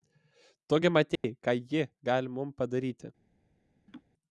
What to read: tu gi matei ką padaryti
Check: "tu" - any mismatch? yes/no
no